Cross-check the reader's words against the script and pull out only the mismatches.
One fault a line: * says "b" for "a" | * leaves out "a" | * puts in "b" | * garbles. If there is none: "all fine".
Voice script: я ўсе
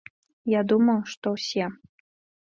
* puts in "думаю што"